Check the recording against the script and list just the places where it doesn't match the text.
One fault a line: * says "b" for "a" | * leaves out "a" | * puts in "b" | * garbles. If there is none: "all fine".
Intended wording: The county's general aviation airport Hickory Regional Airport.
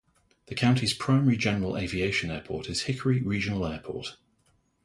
* puts in "primary"
* puts in "is"